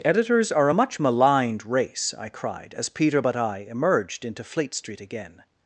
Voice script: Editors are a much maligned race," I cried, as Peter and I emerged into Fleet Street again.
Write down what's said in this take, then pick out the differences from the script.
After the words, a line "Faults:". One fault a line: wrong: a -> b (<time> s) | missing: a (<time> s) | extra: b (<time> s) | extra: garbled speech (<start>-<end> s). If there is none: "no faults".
Editors are a much maligned race," I cried, as Peter but I emerged into Fleet Street again.
Faults:
wrong: and -> but (3.2 s)